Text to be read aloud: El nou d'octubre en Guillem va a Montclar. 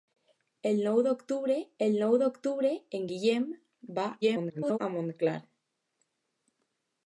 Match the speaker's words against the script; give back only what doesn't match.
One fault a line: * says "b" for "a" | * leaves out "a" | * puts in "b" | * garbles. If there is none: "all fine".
* puts in "el nou d'octubre"
* garbles